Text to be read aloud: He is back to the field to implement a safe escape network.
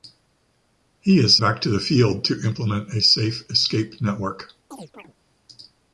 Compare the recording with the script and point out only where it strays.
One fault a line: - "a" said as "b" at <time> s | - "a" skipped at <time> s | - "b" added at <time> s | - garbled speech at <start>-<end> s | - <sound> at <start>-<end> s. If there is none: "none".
- chirp at 4.7-5.1 s